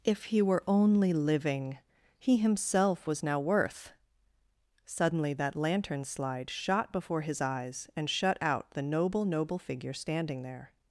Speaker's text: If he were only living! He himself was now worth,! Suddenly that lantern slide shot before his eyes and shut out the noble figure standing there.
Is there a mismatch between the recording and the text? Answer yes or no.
yes